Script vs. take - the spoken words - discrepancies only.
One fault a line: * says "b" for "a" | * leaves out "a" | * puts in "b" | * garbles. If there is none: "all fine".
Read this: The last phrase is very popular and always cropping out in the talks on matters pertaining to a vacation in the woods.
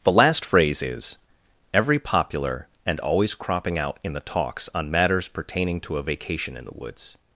* says "every" for "very"